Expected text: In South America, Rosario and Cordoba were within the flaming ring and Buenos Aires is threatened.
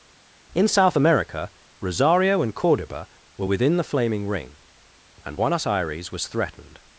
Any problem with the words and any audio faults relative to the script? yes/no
yes